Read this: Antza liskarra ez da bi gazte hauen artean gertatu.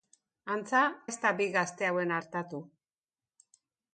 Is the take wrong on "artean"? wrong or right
wrong